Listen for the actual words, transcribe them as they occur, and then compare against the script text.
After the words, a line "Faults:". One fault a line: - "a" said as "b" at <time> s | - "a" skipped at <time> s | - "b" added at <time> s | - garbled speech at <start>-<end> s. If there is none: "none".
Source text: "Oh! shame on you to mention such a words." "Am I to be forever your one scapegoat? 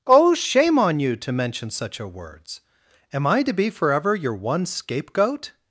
"Oh! shame on you to mention such a words." "Am I to be forever your one scapegoat?
Faults:
none